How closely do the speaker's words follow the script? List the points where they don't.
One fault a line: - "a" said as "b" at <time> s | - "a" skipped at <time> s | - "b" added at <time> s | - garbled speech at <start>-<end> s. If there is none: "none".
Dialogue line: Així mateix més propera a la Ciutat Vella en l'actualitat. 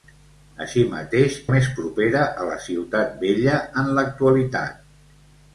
none